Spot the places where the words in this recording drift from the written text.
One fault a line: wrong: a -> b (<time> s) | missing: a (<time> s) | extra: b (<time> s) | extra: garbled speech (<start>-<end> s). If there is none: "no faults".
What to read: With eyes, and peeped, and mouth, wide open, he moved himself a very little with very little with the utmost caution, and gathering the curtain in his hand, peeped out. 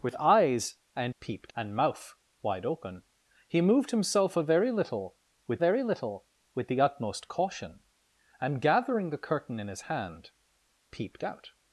no faults